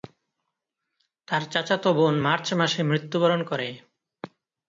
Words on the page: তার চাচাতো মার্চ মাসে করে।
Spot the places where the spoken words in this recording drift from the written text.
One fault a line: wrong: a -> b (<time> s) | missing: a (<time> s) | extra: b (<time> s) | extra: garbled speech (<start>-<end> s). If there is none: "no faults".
extra: বোন (2.0 s)
extra: মৃত্যুবরণ (2.8 s)